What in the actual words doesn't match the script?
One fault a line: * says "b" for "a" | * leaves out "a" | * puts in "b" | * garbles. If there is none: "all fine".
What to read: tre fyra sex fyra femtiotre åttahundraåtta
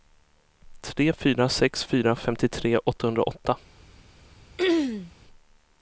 all fine